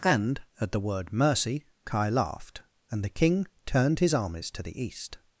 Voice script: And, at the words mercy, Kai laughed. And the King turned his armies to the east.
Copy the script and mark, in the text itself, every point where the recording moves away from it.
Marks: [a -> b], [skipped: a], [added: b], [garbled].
And, at the [words -> word] mercy, Kai laughed. And the King turned his armies to the east.